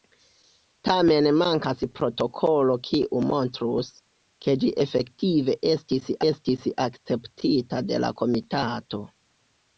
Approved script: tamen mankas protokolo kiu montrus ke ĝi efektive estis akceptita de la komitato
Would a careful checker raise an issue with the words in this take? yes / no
yes